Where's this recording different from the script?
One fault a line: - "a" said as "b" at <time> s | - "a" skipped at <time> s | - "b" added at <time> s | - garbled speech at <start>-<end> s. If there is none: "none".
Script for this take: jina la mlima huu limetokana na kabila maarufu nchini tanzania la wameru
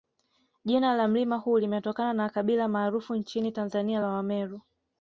none